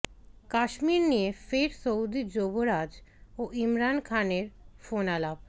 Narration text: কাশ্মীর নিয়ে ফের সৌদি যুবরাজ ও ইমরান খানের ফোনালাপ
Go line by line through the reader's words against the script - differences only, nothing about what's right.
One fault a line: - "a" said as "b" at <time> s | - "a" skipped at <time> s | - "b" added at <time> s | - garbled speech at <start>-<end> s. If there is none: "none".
none